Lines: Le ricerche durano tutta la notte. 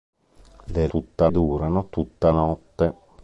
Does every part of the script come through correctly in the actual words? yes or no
no